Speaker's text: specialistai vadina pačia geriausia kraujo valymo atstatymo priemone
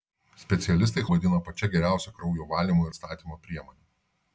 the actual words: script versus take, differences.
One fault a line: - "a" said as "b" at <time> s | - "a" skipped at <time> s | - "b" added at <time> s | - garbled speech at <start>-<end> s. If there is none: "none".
none